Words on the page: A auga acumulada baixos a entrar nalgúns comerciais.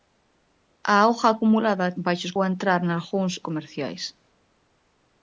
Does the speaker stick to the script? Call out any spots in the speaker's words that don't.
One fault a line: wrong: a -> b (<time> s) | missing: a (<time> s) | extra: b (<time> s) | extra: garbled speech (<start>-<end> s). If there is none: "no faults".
no faults